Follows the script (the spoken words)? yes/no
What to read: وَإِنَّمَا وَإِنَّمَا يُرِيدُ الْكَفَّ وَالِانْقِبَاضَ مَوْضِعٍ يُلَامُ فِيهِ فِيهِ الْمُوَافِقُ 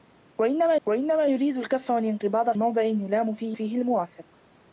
yes